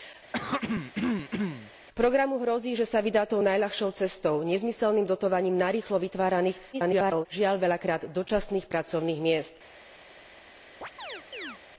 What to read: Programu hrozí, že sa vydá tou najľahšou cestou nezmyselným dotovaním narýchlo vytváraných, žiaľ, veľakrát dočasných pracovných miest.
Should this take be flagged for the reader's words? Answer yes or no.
yes